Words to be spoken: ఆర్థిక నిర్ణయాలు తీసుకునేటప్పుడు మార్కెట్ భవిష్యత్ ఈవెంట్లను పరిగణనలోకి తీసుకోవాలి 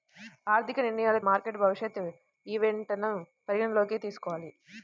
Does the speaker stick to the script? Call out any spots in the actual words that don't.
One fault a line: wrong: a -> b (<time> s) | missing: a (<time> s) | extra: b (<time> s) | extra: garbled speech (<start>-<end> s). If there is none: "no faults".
missing: తీసుకునేటప్పుడు (1.2 s)